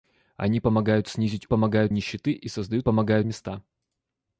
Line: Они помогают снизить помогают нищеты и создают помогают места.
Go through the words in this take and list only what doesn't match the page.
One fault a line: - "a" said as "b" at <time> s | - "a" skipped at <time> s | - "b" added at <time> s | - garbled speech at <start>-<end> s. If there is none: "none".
none